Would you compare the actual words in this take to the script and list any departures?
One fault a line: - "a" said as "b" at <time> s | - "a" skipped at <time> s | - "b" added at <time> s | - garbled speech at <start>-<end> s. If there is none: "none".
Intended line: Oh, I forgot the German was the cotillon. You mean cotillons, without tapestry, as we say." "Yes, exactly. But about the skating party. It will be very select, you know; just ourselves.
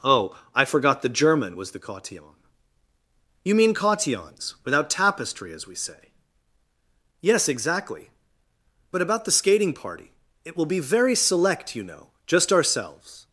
none